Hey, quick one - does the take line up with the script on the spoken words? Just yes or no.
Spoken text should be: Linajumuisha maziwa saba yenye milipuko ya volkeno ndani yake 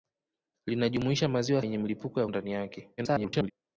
no